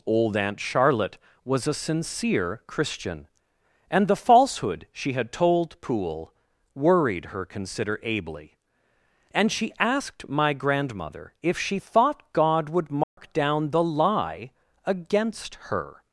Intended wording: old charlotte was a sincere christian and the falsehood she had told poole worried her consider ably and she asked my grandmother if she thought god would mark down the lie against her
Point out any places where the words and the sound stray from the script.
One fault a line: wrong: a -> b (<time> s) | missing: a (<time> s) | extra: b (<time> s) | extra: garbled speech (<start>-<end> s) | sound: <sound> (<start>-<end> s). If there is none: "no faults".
extra: aunt (0.3 s)
sound: dropout (13.0-13.2 s)